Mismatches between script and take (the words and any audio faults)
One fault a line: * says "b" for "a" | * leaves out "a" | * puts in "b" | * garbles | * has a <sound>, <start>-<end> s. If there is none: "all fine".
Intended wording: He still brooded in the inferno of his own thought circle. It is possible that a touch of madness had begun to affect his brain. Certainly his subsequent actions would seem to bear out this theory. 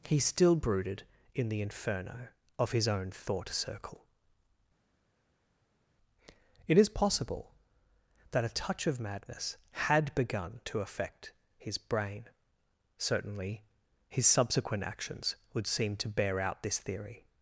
all fine